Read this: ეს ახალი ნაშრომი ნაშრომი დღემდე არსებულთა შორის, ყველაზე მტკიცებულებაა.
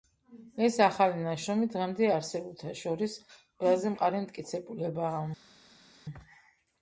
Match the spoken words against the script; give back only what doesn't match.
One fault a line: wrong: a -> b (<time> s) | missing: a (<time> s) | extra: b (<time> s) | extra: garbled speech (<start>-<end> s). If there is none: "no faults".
missing: ნაშრომი (1.7 s)
extra: მყარი (4.0 s)